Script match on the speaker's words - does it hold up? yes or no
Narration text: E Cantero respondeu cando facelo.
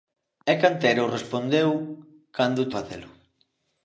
yes